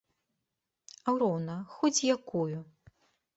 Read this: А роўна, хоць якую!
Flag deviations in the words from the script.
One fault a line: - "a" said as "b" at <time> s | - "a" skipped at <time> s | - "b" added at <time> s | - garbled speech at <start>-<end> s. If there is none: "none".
none